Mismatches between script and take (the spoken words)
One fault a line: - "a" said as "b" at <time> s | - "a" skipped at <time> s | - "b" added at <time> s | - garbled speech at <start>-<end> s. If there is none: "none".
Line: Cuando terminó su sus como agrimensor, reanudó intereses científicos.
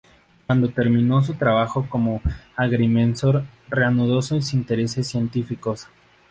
- "sus" said as "trabajo" at 1.4 s
- "sus" added at 4.2 s